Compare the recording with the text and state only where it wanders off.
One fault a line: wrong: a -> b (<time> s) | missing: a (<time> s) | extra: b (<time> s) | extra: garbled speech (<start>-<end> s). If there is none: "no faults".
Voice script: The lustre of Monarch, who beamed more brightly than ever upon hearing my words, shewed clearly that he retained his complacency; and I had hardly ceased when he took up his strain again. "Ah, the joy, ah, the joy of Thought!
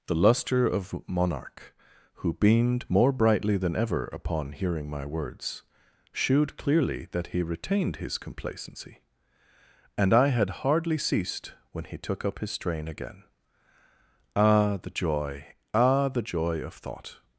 no faults